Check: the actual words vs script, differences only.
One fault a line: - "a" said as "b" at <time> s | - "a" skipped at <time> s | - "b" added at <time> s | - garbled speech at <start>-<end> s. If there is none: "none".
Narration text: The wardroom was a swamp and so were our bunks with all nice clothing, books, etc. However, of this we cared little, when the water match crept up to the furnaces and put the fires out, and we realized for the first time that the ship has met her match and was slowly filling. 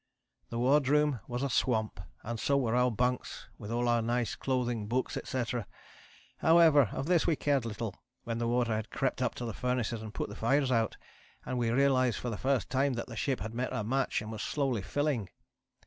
- "our" added at 3.9 s
- "match" said as "had" at 8.8 s
- "has" said as "had" at 13.4 s